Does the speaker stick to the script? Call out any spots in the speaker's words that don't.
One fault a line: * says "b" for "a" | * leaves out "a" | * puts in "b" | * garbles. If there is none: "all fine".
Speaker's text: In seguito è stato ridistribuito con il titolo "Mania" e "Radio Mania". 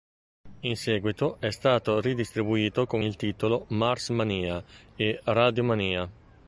* puts in "Mars"